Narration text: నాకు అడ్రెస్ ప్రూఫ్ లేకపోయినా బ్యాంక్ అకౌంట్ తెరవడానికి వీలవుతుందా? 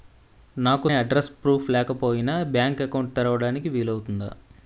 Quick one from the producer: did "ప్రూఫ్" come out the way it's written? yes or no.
yes